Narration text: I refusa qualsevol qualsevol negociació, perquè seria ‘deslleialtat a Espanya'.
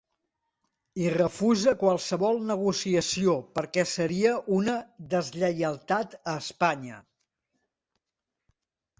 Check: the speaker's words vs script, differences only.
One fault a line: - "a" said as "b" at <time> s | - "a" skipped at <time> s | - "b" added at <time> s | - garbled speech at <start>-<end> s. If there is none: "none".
- "qualsevol" skipped at 2.4 s
- "una" added at 4.6 s